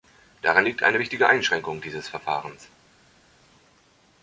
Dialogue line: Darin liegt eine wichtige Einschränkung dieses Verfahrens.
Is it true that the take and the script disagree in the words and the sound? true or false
false